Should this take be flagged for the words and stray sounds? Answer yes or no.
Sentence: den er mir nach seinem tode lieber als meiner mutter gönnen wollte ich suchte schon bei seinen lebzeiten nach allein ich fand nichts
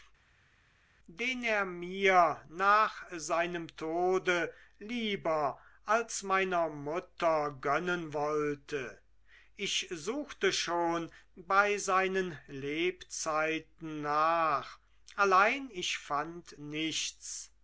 no